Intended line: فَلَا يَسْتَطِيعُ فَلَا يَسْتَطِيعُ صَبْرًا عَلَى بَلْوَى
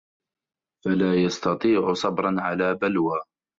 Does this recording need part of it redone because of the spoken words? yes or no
yes